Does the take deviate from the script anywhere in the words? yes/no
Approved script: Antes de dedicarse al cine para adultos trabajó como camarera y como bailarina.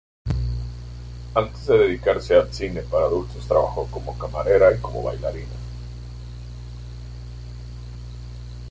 no